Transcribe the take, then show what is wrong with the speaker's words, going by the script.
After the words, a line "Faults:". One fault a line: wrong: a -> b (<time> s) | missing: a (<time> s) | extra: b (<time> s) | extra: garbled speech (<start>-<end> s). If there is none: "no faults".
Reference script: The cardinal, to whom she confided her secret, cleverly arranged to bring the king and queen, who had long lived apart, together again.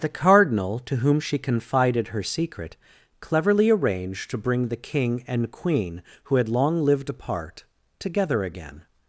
The cardinal, to whom she confided her secret, cleverly arranged to bring the king and queen, who had long lived apart, together again.
Faults:
no faults